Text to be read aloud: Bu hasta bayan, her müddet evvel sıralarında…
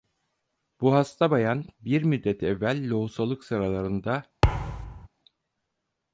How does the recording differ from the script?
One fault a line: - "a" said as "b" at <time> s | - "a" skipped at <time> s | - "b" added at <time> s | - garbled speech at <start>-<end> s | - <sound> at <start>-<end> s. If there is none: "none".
- "her" said as "bir" at 1.8 s
- "lohusalık" added at 2.9 s
- thud at 4.4-5.1 s